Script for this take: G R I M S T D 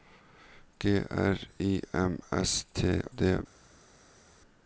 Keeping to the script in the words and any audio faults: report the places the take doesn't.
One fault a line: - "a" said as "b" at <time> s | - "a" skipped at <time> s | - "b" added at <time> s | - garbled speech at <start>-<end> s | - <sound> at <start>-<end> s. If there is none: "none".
none